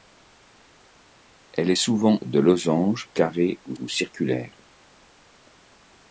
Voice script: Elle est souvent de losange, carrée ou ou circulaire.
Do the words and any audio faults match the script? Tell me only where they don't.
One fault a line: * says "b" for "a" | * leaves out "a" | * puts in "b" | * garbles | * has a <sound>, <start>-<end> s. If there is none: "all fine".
all fine